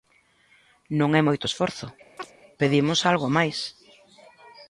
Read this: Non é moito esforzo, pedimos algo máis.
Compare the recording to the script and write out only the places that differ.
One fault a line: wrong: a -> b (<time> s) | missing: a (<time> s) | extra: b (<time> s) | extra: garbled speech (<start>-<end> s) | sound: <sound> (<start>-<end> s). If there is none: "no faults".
sound: chirp (2.2-2.3 s)